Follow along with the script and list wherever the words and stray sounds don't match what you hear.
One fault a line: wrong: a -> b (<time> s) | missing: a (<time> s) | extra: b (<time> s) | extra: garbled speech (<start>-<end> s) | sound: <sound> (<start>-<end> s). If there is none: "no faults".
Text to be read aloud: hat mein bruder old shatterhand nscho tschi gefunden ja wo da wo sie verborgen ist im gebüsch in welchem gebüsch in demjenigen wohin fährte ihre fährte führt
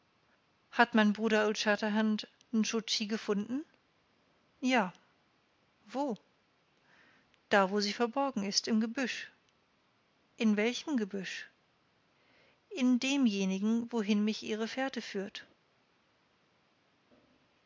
wrong: fährte -> mich (14.2 s)